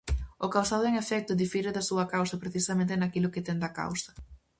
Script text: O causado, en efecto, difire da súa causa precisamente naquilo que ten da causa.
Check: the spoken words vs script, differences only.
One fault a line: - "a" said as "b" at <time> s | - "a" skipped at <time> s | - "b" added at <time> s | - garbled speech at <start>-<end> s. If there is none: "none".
none